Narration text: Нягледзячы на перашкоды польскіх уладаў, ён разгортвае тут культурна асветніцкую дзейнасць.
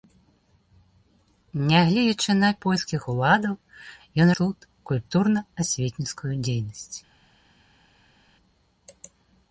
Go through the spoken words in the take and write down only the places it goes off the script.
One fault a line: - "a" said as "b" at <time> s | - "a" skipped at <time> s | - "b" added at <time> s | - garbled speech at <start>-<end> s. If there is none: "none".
- "перашкоды" skipped at 2.5 s
- "разгортвае" skipped at 4.3 s